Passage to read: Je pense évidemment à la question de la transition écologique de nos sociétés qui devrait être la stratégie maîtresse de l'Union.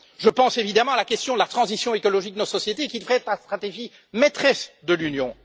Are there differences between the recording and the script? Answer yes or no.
no